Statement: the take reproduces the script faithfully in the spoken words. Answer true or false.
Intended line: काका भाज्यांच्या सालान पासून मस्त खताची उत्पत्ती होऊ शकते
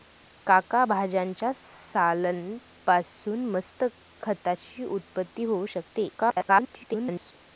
false